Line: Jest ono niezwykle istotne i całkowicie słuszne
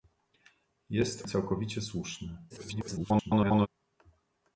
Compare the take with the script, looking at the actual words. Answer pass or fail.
fail